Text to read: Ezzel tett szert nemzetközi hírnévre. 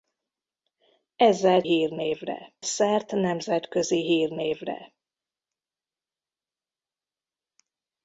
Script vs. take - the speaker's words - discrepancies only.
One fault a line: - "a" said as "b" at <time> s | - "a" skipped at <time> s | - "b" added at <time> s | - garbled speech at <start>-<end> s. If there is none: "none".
- "tett" said as "hírnévre" at 1.6 s